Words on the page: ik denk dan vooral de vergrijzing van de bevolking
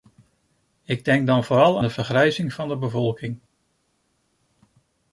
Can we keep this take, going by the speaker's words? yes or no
yes